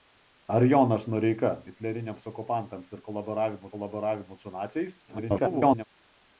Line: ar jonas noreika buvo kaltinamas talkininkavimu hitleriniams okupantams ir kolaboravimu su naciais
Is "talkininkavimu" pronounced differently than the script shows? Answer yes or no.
yes